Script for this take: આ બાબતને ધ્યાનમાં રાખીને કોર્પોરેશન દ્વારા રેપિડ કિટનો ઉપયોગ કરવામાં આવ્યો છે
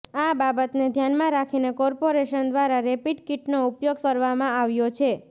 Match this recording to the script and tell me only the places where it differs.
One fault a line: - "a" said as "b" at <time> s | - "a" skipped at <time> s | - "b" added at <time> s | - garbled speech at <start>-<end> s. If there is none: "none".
none